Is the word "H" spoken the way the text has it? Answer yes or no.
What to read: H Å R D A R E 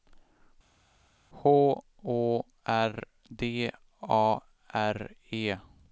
yes